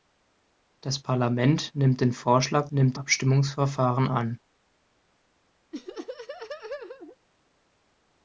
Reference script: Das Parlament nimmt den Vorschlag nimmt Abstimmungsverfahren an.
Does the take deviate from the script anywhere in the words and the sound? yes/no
yes